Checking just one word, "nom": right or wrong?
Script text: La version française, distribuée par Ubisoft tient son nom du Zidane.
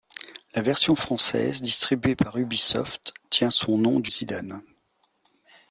right